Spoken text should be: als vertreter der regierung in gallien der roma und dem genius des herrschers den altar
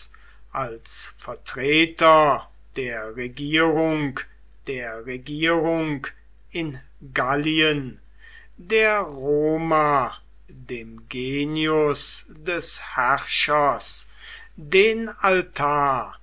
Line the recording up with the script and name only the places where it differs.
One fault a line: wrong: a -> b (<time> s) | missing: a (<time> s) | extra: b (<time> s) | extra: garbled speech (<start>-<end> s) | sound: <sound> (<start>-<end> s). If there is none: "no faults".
extra: der regierung (4.7 s)
missing: und (10.2 s)